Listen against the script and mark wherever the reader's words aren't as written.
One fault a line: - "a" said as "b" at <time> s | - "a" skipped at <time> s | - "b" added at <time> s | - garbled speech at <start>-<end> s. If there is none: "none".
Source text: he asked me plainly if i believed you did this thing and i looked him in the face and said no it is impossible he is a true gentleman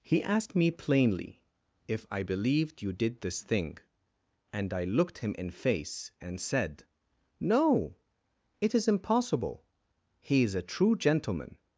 - "the" skipped at 5.5 s